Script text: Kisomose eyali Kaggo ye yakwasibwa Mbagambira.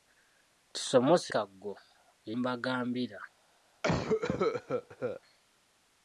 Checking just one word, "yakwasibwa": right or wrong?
wrong